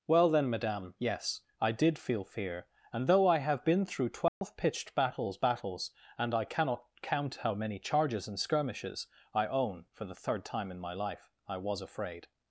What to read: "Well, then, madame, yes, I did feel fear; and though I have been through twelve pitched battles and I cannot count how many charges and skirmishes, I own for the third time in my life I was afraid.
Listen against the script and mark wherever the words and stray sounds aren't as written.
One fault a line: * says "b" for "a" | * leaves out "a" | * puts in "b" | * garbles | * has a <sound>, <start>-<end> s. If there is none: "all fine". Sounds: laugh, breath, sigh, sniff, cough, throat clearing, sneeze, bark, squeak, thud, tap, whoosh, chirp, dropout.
* has a dropout, 4.3-4.4 s
* puts in "battles"